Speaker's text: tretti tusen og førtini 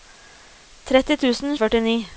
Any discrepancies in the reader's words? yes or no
no